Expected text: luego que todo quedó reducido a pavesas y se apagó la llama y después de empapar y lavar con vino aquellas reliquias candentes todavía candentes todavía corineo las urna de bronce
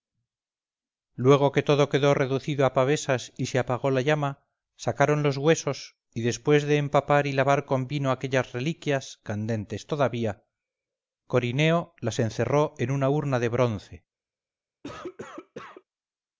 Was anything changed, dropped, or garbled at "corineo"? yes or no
yes